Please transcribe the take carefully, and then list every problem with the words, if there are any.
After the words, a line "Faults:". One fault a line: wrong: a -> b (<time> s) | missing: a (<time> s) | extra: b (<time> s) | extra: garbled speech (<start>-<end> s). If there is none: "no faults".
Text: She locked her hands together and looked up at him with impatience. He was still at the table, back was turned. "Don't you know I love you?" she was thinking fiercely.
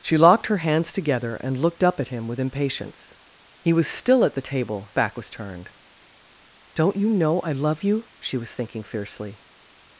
She locked her hands together and looked up at him with impatience. He was still at the table, back was turned. "Don't you know I love you?" she was thinking fiercely.
Faults:
no faults